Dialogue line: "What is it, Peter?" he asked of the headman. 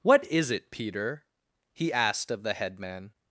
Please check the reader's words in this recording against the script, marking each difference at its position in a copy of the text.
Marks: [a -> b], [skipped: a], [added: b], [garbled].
"What is it, Peter?" he asked of the headman.